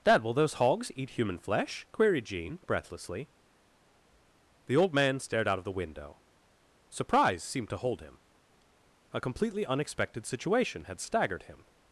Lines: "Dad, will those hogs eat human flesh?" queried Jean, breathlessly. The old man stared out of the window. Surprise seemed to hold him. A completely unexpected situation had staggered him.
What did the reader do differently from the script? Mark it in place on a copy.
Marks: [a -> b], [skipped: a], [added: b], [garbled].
"Dad, will those hogs eat human flesh?" queried Jean, breathlessly. The old man stared out of the window. Surprise seemed to hold him. A completely unexpected situation had staggered him.